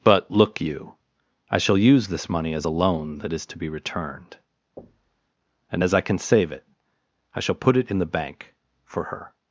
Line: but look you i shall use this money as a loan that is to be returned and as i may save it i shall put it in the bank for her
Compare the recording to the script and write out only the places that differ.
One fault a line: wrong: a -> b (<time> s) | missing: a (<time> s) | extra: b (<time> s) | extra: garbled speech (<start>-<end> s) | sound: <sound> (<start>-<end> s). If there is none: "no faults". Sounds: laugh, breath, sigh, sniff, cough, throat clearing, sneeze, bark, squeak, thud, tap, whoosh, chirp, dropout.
sound: thud (4.8-5.3 s)
wrong: may -> can (6.0 s)